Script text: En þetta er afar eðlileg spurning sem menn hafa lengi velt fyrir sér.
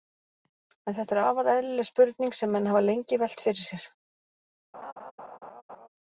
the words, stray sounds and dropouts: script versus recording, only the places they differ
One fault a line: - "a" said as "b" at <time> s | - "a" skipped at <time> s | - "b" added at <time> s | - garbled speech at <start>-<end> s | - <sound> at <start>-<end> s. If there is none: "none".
- laugh at 4.7-5.9 s